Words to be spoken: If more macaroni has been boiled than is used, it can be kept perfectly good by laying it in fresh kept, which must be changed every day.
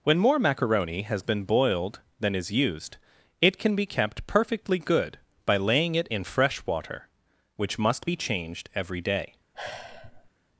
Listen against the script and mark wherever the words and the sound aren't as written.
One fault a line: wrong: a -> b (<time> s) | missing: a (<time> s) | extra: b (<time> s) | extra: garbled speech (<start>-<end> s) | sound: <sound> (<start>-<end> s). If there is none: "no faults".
wrong: If -> When (0.0 s)
wrong: kept -> water (6.7 s)
sound: sigh (9.5-10.3 s)